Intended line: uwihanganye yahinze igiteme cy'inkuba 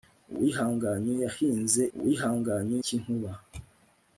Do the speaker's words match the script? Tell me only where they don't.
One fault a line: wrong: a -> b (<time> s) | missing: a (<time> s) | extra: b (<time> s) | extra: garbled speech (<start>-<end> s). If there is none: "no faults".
wrong: igiteme -> uwihanganye (2.0 s)